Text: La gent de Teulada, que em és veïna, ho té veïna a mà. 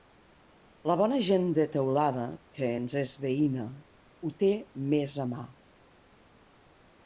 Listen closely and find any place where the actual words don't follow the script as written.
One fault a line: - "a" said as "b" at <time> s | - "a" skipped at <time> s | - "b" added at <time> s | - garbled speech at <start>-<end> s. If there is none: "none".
- "bona" added at 1.0 s
- "em" said as "ens" at 2.8 s
- "veïna" said as "més" at 4.9 s